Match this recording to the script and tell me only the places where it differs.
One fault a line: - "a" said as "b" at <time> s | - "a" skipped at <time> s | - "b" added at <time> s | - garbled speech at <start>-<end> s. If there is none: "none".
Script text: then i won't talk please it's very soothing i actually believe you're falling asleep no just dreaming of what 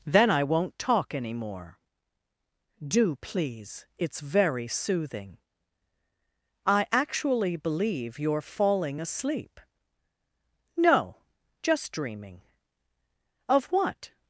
- "any more do" added at 1.1 s